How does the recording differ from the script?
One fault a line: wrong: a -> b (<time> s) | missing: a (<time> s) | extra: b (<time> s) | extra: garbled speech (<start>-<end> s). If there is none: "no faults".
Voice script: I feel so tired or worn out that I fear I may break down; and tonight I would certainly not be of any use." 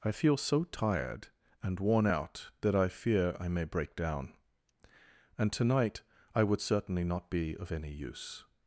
wrong: or -> and (1.6 s)